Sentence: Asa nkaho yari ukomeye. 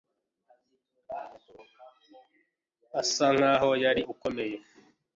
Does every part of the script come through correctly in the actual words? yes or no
yes